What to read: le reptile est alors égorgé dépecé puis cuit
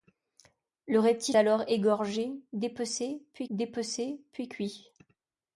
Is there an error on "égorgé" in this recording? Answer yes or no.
no